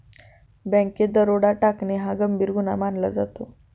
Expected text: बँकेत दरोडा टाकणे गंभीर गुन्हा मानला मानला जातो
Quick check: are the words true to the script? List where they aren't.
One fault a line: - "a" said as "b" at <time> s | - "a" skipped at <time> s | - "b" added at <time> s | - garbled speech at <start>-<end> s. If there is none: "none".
- "हा" added at 2.0 s
- "मानला" skipped at 3.1 s